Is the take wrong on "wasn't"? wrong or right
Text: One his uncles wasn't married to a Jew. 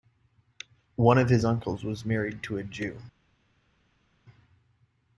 wrong